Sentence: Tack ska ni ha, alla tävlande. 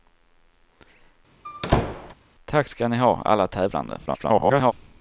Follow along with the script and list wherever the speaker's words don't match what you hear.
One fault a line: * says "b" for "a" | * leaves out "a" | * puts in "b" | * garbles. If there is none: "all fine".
* garbles